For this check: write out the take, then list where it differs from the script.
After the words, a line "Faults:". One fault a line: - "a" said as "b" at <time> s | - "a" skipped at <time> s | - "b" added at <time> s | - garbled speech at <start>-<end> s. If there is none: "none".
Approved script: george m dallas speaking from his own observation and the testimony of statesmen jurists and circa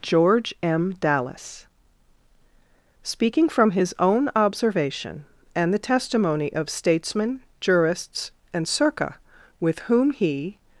george m dallas speaking from his own observation and the testimony of statesmen jurists and circa with whom he
Faults:
- "with whom he" added at 9.6 s